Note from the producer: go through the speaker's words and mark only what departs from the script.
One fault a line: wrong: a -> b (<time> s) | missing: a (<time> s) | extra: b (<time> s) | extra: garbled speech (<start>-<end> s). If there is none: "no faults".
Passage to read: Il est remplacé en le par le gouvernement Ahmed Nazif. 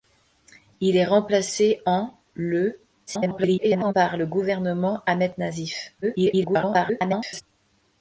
extra: garbled speech (3.1-3.9 s)
extra: garbled speech (6.0-7.4 s)